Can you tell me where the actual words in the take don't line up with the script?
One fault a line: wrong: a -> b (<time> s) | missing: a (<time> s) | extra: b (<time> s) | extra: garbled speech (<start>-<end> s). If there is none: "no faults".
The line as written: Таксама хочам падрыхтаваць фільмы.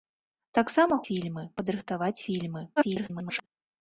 wrong: хочам -> фільмы (1.1 s)
extra: garbled speech (2.8-3.5 s)